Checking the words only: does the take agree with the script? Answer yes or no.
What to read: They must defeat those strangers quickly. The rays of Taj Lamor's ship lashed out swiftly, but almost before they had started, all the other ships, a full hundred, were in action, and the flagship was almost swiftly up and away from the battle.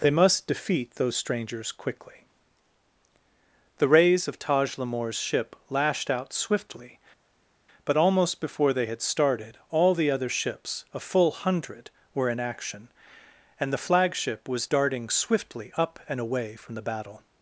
no